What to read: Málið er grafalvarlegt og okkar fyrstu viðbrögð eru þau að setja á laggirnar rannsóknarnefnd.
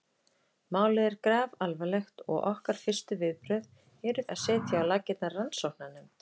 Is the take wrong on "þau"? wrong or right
wrong